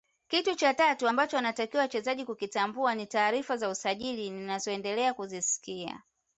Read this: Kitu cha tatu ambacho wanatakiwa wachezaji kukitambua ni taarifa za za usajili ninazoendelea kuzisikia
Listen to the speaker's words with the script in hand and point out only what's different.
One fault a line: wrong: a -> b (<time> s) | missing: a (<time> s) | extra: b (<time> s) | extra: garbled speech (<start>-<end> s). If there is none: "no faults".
missing: za (3.7 s)